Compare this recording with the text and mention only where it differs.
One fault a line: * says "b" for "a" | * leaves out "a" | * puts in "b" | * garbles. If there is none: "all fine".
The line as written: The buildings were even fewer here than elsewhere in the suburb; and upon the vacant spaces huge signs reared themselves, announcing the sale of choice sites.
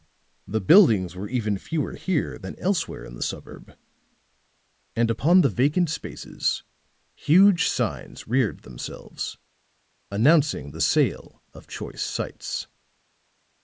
all fine